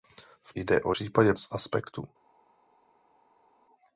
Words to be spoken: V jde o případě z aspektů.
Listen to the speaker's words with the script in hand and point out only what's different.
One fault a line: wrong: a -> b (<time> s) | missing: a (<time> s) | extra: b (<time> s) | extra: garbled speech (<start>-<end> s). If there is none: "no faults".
no faults